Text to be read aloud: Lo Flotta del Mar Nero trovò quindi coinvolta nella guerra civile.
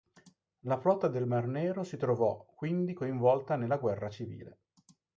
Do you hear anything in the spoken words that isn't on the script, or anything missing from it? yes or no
yes